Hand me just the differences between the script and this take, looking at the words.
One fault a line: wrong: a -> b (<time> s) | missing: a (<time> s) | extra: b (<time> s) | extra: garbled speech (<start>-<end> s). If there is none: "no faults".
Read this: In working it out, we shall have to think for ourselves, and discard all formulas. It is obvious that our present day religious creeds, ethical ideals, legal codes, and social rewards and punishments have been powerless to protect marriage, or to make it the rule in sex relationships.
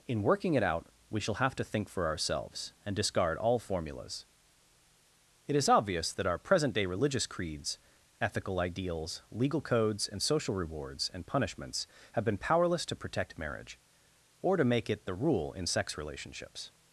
no faults